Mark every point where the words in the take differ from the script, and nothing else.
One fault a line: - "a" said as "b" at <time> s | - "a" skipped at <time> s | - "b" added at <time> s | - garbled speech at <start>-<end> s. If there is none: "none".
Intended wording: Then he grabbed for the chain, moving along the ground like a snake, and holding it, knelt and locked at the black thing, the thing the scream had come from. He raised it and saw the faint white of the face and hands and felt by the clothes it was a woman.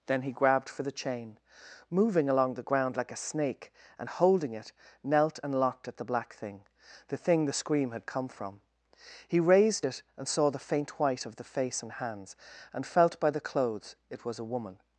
none